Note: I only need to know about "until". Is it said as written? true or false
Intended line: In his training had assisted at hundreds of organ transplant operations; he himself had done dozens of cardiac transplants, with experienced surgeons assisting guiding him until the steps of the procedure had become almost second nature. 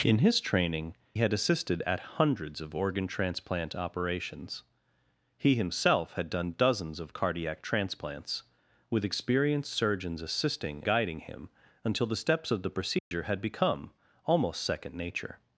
true